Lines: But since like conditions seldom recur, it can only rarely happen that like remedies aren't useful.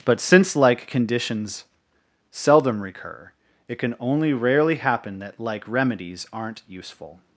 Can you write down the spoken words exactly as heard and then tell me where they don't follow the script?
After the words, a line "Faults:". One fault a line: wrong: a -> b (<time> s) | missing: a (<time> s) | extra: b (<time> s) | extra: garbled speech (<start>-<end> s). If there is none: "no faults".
But since like conditions seldom recur, it can only rarely happen that like remedies aren't useful.
Faults:
no faults